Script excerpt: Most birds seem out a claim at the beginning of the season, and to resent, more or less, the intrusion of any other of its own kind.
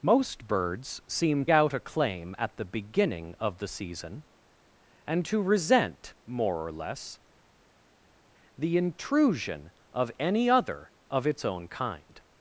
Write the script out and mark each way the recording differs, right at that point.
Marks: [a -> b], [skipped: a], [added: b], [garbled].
Most birds seem out a claim at the beginning of the season, and to resent, more or less, the intrusion of any other of its own kind.